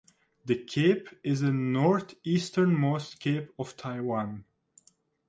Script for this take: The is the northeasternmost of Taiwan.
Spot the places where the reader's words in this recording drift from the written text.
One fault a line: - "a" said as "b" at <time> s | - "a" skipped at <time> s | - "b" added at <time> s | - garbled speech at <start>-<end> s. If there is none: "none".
- "cape" added at 0.6 s
- "cape" added at 3.2 s